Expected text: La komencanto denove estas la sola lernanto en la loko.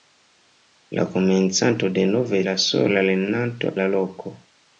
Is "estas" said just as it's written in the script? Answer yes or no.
no